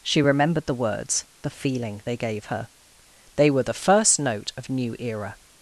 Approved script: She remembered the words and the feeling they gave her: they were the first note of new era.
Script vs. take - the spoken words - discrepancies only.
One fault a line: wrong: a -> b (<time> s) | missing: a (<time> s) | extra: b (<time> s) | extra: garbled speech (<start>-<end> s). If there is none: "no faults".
missing: and (1.3 s)